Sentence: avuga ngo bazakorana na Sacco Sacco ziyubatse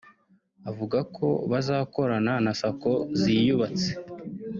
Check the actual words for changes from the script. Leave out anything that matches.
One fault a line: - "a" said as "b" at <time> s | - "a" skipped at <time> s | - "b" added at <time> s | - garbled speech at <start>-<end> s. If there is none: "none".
- "ngo" said as "ko" at 1.1 s
- "Sacco" skipped at 2.9 s